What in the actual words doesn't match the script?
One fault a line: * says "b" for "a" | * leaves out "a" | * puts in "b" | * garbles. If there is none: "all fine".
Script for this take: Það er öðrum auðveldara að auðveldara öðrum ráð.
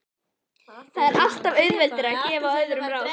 * says "alltaf" for "öðrum"
* says "gefa" for "auðveldara"